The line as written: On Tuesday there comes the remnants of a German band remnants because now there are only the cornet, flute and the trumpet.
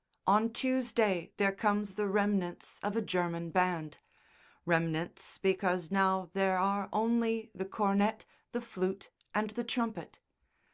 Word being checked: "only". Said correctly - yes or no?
yes